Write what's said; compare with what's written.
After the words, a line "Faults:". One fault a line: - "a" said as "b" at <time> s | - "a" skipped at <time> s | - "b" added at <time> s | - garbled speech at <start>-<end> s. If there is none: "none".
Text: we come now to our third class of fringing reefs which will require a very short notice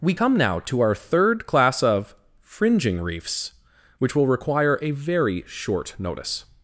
we come now to our third class of fringing reefs which will require a very short notice
Faults:
none